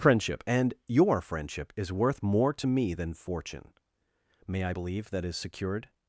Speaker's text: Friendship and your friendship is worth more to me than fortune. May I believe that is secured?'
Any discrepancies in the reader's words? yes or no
no